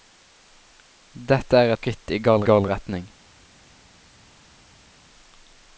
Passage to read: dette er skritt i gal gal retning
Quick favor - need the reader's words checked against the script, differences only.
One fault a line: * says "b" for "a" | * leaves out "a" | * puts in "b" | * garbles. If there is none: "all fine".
all fine